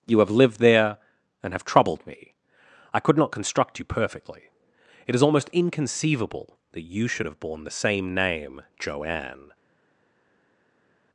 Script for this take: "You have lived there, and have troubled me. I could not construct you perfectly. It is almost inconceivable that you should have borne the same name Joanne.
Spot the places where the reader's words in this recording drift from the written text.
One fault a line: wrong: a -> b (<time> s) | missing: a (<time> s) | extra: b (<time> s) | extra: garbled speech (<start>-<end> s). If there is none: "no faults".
no faults